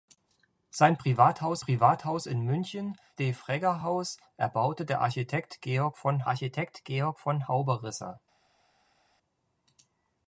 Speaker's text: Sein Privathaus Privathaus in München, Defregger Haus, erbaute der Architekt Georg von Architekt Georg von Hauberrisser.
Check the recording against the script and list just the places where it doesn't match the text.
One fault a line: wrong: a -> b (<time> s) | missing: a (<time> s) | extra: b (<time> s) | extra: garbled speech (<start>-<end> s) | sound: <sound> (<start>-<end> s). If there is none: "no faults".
no faults